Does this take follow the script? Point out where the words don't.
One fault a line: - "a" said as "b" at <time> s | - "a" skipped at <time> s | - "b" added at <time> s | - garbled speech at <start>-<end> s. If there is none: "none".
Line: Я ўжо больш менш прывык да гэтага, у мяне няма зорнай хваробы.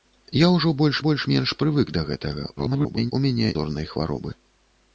- "больш" added at 1.0 s
- garbled speech at 2.6-3.1 s
- "няма" skipped at 3.5 s